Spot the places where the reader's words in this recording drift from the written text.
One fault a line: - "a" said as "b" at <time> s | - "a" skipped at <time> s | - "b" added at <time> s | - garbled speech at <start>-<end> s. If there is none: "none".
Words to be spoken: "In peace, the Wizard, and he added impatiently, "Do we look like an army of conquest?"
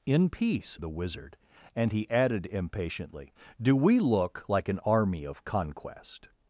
none